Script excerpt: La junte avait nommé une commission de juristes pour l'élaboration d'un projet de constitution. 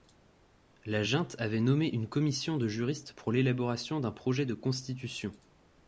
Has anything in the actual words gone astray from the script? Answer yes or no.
no